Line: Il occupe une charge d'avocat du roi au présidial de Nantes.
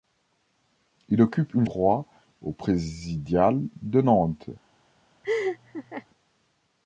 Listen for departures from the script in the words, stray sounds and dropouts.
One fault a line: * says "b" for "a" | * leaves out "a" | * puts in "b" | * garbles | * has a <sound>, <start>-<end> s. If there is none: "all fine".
* leaves out "charge d'avocat du"
* has a laugh, 5.2-6.1 s